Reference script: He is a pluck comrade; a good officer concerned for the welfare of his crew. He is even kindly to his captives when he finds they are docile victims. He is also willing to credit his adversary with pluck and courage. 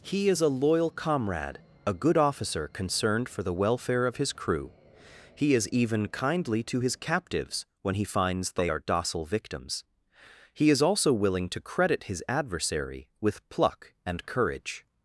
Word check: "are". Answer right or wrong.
right